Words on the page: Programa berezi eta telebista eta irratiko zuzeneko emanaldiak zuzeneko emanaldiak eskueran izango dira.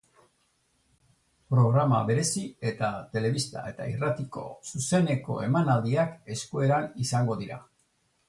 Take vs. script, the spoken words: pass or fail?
fail